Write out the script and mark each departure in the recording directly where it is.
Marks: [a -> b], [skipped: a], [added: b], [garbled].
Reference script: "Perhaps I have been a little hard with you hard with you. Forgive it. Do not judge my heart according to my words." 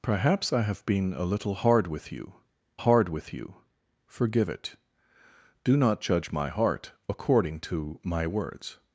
"Perhaps I have been a little hard with you hard with you. Forgive it. Do not judge my heart according to my words."